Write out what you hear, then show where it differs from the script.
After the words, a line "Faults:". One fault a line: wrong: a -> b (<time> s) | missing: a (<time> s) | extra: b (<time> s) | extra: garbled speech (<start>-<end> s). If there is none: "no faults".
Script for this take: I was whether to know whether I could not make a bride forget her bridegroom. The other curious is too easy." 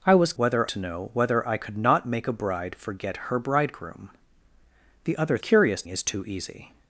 I was whether to know whether I could not make a bride forget her bridegroom. The other curious is too easy."
Faults:
no faults